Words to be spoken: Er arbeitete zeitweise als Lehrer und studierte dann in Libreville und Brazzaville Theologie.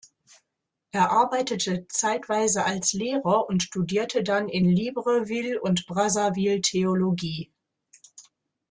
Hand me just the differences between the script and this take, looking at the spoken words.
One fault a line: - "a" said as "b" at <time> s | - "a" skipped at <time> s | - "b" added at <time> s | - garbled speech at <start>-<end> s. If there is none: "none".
none